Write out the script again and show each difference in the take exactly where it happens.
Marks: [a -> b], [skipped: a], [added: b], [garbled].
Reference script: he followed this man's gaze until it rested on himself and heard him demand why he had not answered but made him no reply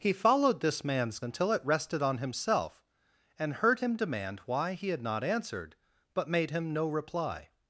he followed this man's [skipped: gaze] until it rested on himself and heard him demand why he had not answered but made him no reply